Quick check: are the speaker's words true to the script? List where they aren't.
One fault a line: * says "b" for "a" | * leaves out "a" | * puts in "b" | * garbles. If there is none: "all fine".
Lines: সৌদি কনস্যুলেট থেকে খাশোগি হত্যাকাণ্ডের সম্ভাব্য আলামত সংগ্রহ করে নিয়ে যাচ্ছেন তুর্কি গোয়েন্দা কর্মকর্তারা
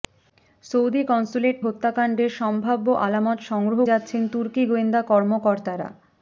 * leaves out "থেকে খাশোগি"
* leaves out "করে নিয়ে"